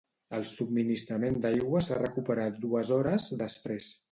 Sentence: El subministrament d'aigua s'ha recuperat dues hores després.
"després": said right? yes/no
yes